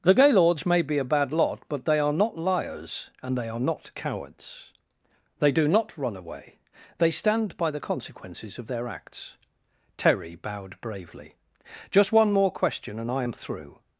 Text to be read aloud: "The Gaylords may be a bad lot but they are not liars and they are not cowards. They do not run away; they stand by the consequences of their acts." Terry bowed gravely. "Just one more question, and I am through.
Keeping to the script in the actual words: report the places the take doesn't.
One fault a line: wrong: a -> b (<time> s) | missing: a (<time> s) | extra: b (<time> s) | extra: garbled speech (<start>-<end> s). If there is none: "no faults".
wrong: gravely -> bravely (10.8 s)